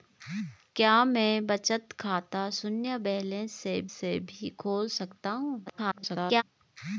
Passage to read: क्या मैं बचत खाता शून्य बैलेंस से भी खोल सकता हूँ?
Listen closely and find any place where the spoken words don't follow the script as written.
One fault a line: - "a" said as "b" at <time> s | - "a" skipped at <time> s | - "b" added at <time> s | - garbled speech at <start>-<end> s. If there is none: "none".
- "से" added at 3.9 s
- garbled speech at 5.7-6.4 s